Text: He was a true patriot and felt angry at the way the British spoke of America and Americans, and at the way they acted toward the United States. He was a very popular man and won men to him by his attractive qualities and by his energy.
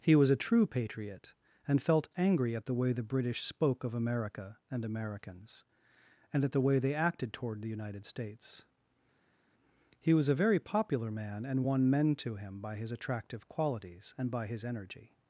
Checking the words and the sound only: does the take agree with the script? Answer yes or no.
yes